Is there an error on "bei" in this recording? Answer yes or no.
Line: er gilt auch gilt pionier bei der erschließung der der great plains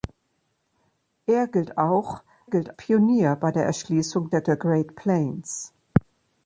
no